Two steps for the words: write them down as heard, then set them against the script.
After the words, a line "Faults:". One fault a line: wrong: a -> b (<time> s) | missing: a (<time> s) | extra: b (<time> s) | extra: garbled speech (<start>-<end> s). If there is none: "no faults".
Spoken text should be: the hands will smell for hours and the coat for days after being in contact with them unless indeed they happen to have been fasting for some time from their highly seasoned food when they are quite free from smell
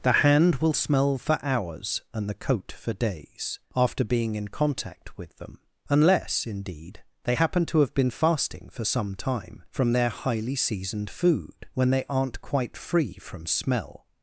the hand will smell for hours and the coat for days after being in contact with them unless indeed they happen to have been fasting for some time from their highly seasoned food when they aren't quite free from smell
Faults:
wrong: hands -> hand (0.2 s)
wrong: are -> aren't (12.1 s)